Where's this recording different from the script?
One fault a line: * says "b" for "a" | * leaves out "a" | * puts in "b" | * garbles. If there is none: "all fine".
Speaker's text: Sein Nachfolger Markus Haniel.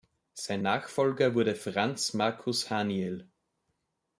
* puts in "wurde Franz"